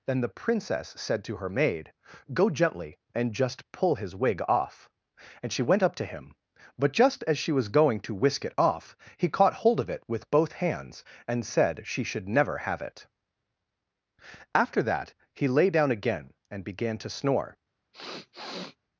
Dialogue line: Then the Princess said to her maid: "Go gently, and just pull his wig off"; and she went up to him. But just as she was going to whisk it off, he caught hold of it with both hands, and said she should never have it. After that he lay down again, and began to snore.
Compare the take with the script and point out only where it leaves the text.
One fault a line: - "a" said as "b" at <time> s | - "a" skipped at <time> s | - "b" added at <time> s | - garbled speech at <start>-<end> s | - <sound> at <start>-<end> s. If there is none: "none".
- sniff at 17.9-18.8 s